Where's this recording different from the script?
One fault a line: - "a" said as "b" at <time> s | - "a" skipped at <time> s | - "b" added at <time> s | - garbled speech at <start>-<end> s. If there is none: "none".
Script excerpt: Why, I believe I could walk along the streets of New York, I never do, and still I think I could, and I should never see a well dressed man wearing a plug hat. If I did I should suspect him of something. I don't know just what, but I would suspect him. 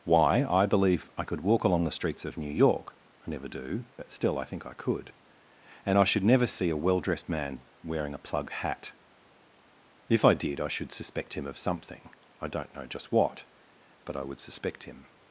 - "and" said as "but" at 4.0 s